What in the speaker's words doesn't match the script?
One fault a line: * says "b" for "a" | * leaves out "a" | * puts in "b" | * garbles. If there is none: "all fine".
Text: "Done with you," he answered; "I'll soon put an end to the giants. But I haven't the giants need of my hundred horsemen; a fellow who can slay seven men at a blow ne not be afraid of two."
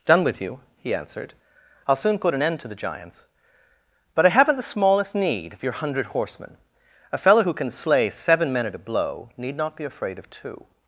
* says "smallest" for "giants"
* says "your" for "my"
* says "need" for "ne"